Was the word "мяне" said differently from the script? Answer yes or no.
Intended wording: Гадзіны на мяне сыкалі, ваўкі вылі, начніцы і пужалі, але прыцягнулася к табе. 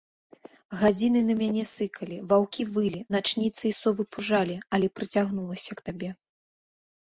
no